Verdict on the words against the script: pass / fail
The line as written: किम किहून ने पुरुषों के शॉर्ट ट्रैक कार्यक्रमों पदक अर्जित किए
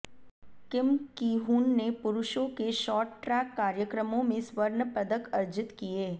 fail